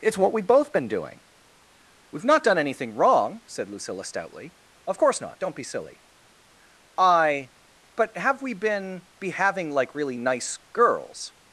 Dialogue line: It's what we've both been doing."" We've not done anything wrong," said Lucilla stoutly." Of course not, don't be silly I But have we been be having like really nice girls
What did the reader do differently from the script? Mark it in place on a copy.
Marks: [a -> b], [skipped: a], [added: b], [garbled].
It's what we've both been doing."" We've not done anything wrong," said Lucilla stoutly." Of course not, don't be silly I But have we been be having like really nice girls